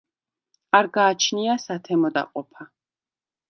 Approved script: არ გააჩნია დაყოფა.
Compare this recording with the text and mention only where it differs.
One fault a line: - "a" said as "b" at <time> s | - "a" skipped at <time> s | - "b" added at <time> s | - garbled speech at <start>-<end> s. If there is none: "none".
- "სათემო" added at 1.7 s